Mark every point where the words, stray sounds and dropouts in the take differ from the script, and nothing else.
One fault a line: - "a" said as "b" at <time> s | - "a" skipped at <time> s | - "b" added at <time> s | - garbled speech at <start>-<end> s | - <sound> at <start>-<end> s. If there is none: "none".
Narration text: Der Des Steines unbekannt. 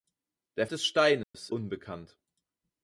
- dropout at 1.2-1.3 s